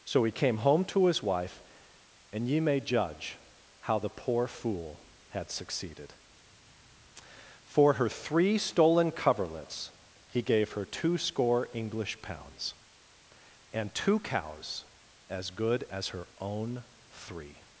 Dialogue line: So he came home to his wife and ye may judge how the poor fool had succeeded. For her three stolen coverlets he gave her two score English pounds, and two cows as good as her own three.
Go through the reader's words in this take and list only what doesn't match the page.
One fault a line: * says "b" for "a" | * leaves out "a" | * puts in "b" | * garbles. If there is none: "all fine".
all fine